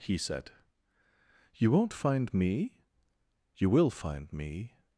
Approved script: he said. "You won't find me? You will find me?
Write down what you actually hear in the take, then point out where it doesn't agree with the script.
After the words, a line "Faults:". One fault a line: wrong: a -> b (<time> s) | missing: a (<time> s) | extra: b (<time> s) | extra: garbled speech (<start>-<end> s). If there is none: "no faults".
he said. "You won't find me? You will find me?
Faults:
no faults